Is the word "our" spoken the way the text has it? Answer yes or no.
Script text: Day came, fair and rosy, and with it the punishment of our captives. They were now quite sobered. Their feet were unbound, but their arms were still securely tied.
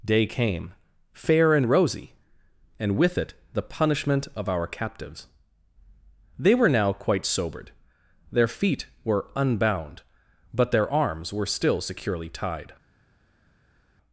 yes